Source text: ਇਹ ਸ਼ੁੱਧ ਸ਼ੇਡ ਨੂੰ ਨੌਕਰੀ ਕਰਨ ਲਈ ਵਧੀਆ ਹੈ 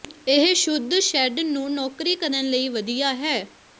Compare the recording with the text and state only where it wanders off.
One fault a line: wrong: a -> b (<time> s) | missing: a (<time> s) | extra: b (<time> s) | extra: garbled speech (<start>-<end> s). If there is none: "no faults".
no faults